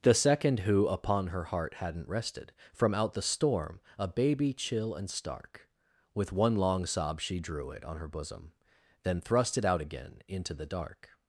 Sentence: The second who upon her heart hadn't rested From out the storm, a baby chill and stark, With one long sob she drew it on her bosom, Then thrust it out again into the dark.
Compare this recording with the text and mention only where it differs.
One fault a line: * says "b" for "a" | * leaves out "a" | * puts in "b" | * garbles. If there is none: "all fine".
all fine